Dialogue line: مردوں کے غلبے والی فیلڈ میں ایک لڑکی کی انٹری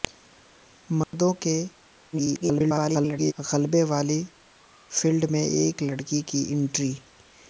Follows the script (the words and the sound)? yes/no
no